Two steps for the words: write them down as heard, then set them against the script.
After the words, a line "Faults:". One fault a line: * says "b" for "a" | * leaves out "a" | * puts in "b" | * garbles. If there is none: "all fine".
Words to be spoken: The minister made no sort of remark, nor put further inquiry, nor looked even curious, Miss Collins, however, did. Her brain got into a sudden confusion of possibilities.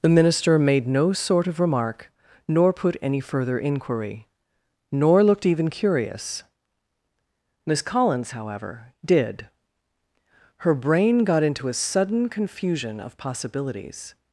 The minister made no sort of remark, nor put any further inquiry, nor looked even curious, Miss Collins, however, did. Her brain got into a sudden confusion of possibilities.
Faults:
* puts in "any"